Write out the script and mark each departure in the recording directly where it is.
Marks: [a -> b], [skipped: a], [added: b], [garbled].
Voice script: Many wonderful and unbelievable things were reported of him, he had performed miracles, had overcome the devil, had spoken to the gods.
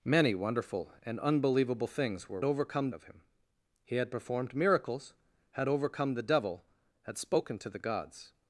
Many wonderful and unbelievable things were [reported -> overcome] of him, he had performed miracles, had overcome the devil, had spoken to the gods.